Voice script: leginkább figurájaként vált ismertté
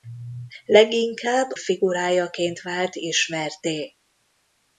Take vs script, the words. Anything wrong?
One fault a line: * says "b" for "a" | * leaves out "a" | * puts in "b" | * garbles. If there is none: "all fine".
all fine